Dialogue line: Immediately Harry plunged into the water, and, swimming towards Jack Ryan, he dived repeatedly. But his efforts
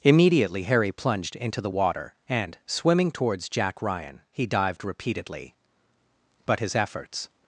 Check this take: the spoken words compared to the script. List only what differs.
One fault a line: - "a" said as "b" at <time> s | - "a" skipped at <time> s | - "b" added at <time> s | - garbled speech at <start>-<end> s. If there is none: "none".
none